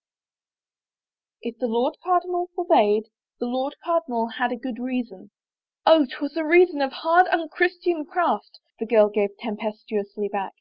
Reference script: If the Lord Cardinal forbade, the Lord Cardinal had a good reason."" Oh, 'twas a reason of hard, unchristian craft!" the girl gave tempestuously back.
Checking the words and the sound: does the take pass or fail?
pass